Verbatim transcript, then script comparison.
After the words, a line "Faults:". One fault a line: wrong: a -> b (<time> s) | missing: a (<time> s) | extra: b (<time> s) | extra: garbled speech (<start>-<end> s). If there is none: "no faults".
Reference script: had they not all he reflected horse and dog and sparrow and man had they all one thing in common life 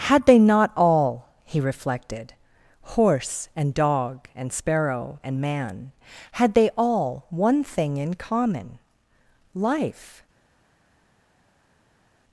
had they not all he reflected horse and dog and sparrow and man had they all one thing in common life
Faults:
no faults